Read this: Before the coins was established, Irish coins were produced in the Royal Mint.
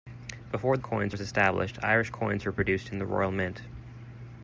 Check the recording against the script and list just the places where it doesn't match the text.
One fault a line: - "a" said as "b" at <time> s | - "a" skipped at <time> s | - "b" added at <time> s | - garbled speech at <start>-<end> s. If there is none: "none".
none